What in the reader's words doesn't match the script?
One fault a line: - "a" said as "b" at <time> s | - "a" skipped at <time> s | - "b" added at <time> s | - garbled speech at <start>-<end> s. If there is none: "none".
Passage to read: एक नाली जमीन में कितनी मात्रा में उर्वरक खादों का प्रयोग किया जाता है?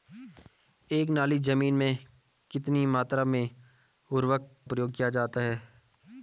- "खादों का" skipped at 4.6 s